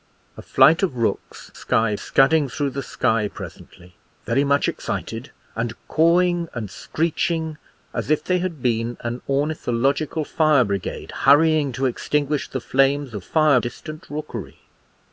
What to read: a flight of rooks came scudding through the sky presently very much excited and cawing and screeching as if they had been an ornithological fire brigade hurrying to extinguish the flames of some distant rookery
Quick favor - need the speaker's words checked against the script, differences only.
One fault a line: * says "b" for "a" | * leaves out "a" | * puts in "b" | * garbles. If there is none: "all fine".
* says "sky" for "came"
* says "fire" for "some"